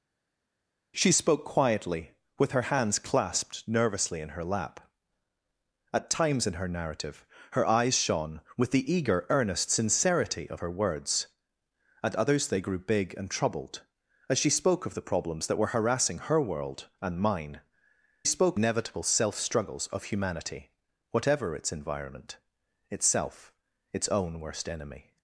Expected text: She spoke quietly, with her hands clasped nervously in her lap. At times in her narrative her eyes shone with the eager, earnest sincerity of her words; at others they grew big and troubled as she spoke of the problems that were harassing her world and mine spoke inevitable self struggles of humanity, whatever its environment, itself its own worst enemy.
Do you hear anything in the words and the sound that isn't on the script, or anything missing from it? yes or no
no